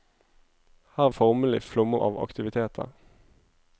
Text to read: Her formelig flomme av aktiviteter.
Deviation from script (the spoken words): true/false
false